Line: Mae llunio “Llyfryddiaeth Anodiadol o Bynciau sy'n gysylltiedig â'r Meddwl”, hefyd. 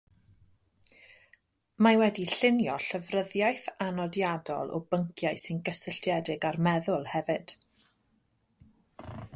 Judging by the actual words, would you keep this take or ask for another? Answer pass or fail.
fail